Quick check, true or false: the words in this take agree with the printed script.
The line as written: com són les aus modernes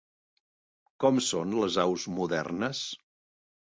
true